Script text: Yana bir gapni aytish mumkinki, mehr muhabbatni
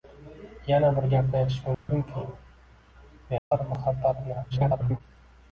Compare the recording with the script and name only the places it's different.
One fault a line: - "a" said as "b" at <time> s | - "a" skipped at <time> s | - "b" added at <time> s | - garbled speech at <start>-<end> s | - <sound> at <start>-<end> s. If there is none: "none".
- dropout at 1.7-1.9 s
- dropout at 3.4-3.5 s
- garbled speech at 4.5-5.0 s